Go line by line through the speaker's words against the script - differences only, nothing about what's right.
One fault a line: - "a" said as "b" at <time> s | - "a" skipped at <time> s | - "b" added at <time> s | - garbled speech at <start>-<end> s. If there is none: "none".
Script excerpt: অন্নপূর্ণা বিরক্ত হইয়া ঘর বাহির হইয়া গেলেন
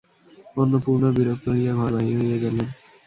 none